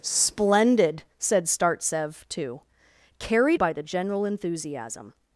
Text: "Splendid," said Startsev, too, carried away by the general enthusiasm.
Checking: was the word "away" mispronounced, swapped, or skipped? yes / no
yes